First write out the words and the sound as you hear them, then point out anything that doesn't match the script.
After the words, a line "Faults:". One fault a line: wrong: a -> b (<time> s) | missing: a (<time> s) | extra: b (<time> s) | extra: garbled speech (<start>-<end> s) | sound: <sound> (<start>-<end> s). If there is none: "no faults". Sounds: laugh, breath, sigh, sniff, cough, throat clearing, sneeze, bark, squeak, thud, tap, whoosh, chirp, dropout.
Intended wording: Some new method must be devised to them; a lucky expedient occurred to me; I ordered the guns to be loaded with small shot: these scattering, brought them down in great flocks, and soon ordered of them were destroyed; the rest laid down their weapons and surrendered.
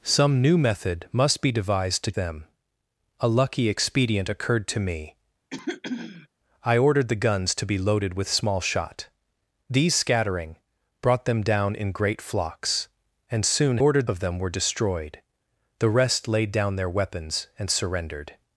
Some new method must be devised to them; a lucky expedient occurred to me; I ordered the guns to be loaded with small shot: these scattering, brought them down in great flocks, and soon ordered of them were destroyed; the rest laid down their weapons and surrendered.
Faults:
sound: throat clearing (5.5-6.3 s)